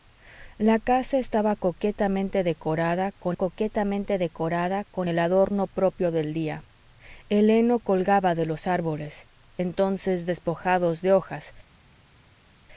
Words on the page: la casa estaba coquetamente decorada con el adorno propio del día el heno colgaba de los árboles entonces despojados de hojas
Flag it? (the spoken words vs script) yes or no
yes